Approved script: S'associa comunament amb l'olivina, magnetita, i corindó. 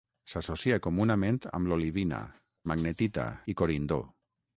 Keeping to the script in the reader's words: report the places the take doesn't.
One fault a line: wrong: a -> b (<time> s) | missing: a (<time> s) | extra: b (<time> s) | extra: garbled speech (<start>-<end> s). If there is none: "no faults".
no faults